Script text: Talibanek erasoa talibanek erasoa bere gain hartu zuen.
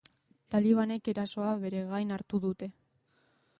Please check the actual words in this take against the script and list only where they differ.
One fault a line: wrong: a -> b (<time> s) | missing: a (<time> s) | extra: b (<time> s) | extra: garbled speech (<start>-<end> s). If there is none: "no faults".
missing: talibanek erasoa (1.5 s)
wrong: zuen -> dute (2.5 s)